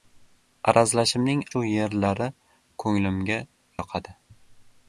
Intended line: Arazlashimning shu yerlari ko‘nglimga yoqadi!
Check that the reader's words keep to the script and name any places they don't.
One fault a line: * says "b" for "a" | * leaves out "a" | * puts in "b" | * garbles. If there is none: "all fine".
all fine